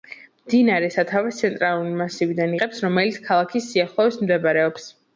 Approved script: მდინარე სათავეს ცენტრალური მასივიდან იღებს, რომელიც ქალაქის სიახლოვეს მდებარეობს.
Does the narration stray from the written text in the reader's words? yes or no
no